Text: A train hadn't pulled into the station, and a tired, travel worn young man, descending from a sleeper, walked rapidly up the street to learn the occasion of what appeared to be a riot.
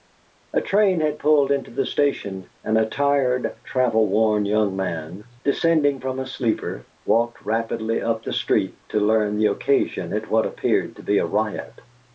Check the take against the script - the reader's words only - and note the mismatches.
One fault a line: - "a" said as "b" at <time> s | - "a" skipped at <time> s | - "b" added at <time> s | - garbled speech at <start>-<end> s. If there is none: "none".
- "hadn't" said as "had" at 1.0 s